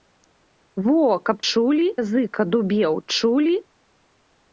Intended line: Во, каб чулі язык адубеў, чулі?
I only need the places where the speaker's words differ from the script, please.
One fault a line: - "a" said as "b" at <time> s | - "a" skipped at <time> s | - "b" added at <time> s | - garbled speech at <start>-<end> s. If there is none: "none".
none